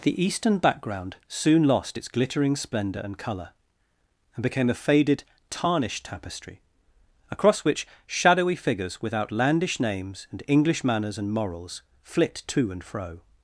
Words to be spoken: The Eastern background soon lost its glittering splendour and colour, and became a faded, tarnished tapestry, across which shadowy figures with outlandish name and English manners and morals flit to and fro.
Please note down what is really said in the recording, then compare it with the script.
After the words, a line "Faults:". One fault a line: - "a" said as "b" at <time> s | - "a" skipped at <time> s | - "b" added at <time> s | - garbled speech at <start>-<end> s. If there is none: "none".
The Eastern background soon lost its glittering splendour and colour, and became a faded, tarnished tapestry, across which shadowy figures with outlandish names and English manners and morals flit to and fro.
Faults:
- "name" said as "names" at 9.8 s